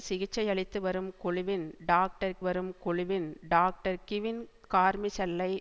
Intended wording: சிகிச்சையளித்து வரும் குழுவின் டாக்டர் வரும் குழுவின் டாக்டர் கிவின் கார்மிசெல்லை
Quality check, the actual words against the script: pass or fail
pass